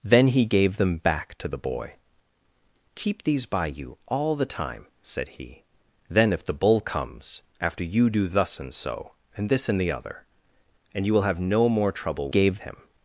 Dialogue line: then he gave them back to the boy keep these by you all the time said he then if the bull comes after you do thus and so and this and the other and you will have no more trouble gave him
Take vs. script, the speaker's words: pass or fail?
pass